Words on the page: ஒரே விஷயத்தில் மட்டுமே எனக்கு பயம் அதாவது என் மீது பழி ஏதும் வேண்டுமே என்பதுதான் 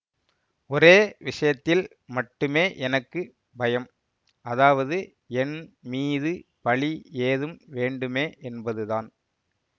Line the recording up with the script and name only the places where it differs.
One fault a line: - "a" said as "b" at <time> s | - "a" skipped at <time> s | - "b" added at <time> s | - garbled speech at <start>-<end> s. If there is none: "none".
none